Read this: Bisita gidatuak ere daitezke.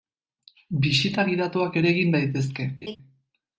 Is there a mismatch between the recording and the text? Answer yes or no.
yes